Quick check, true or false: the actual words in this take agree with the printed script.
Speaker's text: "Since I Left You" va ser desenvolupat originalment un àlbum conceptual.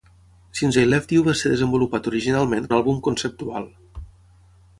true